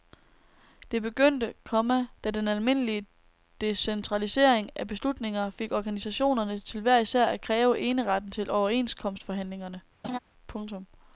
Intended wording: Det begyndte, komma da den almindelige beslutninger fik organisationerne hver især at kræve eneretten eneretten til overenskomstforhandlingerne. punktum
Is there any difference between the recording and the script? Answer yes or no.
yes